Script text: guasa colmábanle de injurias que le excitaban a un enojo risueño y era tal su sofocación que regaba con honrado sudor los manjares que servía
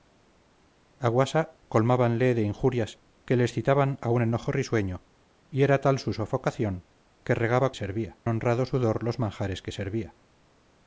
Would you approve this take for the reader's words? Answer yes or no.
no